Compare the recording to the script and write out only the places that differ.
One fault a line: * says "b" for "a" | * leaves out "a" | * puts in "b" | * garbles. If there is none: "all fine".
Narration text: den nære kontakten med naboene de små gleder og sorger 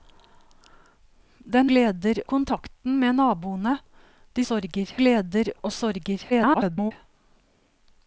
* says "gleder" for "nære"
* says "sorger" for "små"
* garbles